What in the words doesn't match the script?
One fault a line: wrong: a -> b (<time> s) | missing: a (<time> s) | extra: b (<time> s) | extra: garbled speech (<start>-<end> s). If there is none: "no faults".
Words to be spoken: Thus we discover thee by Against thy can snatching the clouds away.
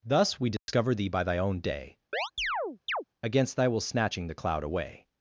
extra: thy own day (1.2 s)
wrong: can -> will (3.7 s)
wrong: clouds -> cloud (4.4 s)